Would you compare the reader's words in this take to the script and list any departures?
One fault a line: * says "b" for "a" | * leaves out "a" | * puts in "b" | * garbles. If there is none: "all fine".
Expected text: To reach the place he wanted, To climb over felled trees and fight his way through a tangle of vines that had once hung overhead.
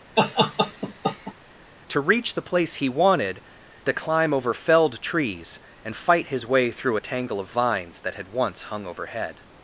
all fine